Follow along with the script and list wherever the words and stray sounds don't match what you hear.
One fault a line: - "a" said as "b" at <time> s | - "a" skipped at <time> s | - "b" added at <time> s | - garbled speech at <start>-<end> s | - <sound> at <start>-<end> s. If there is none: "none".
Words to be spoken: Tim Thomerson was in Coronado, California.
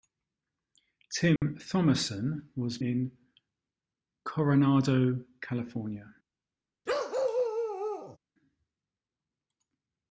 - dropout at 1.4-1.4 s
- bark at 6.9-8.2 s